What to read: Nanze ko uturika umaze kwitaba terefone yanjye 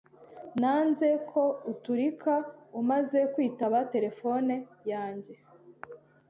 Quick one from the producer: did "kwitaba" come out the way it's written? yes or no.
yes